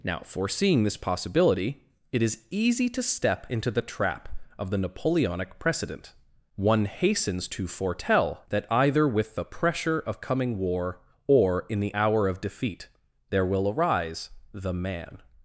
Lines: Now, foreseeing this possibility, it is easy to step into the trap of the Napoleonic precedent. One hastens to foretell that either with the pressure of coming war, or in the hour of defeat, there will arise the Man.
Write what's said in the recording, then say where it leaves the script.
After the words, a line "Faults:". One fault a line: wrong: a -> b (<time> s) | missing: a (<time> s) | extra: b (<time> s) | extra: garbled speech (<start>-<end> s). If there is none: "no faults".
Now, foreseeing this possibility, it is easy to step into the trap of the Napoleonic precedent. One hastens to foretell that either with the pressure of coming war, or in the hour of defeat, there will arise the Man.
Faults:
no faults